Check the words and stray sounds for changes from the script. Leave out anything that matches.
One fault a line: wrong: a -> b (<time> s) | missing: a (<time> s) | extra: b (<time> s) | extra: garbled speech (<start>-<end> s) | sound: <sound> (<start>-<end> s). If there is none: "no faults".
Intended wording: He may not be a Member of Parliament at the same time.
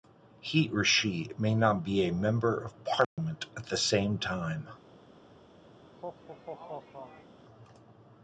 extra: or she (0.7 s)
sound: dropout (3.0-3.2 s)
sound: laugh (5.8-7.4 s)